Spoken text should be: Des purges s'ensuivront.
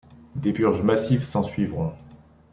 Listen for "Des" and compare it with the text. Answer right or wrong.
right